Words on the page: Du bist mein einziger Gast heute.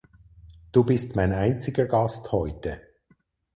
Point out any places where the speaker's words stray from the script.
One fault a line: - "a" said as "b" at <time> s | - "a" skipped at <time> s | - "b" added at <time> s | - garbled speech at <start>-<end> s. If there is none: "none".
none